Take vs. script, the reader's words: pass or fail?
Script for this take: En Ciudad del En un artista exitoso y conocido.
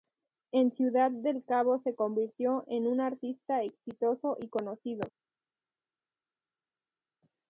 fail